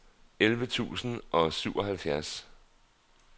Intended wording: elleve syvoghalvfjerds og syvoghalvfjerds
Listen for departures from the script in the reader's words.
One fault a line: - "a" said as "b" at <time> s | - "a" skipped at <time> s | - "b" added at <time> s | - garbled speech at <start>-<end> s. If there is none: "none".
- "syvoghalvfjerds" said as "tusind" at 0.7 s